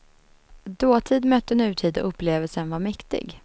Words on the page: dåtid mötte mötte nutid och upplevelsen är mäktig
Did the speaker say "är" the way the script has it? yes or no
no